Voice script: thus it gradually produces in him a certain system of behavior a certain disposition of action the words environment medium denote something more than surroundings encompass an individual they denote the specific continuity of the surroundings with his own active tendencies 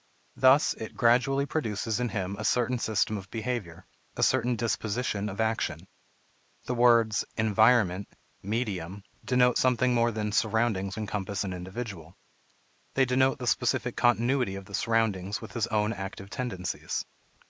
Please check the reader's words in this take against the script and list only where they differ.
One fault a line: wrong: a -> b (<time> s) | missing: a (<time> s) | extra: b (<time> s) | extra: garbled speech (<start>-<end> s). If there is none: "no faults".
no faults